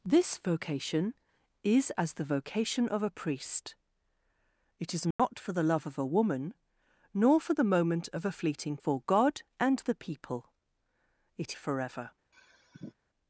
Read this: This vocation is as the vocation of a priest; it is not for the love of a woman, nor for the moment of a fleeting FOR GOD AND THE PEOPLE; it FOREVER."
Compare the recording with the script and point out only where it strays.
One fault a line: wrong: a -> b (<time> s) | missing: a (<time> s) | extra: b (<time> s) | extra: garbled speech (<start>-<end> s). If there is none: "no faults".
no faults